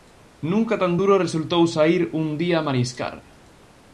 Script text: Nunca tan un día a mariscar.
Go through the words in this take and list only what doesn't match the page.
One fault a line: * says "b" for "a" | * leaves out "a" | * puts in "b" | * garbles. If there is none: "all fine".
* puts in "duro resultou saír"